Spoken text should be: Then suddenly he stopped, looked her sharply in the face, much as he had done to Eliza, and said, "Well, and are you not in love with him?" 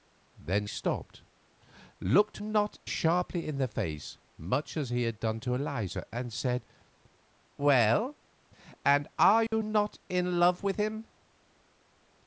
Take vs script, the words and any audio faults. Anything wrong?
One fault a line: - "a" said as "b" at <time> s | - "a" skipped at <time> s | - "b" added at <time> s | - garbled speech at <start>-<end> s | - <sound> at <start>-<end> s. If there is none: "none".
- "suddenly he" skipped at 0.7 s
- "her" said as "not" at 2.4 s
- dropout at 9.5-9.5 s